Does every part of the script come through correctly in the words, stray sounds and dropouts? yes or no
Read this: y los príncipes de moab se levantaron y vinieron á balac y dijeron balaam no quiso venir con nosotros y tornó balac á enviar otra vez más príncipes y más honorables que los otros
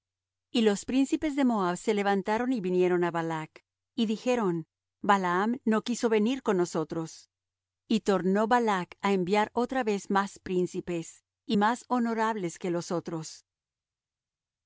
yes